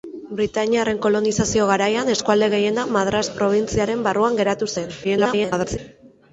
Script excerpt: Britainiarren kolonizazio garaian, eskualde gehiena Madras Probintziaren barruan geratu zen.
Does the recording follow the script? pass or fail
fail